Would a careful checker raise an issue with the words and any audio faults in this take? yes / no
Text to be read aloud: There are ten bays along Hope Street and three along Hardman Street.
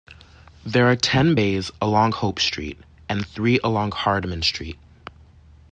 no